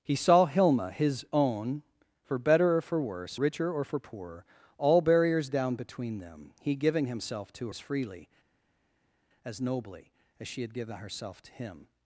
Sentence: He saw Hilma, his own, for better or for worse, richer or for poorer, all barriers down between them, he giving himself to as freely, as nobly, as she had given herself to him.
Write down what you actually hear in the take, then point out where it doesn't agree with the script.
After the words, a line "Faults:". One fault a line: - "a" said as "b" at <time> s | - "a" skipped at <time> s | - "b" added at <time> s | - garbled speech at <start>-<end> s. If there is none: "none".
He saw Hilma, his own, for better or for worse, richer or for poorer, all barriers down between them, he giving himself to as freely, as nobly, as she had given herself to him.
Faults:
none